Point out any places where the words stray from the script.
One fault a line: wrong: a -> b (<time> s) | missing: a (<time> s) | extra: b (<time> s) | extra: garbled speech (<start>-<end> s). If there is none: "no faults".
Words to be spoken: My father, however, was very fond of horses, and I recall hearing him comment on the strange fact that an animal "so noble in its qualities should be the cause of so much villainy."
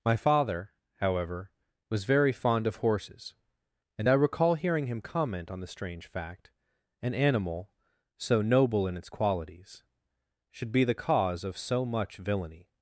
missing: that (6.5 s)